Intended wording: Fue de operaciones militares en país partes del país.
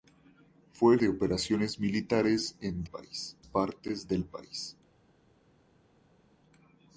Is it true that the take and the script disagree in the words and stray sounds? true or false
false